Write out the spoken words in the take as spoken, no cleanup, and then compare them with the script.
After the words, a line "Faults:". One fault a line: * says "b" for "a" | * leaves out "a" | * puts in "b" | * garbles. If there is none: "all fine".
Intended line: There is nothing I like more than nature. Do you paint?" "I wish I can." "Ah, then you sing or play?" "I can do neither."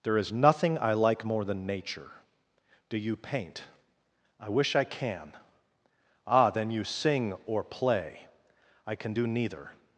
There is nothing I like more than nature. Do you paint?" "I wish I can." "Ah, then you sing or play?" "I can do neither."
Faults:
all fine